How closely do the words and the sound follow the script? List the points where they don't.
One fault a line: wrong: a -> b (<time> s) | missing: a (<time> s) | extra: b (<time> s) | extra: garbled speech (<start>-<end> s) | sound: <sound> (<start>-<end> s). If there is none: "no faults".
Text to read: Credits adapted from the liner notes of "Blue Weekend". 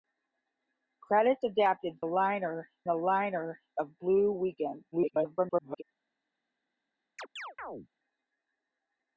wrong: from -> liner (2.0 s)
missing: notes (3.6 s)
extra: garbled speech (4.9-5.8 s)
sound: chirp (7.2-7.9 s)